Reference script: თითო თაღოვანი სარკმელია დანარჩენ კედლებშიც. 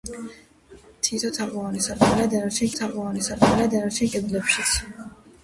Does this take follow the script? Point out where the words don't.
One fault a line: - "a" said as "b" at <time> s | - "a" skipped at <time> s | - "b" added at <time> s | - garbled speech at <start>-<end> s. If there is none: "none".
- "თაღოვანი სარკმელია დანარჩენ" added at 2.8 s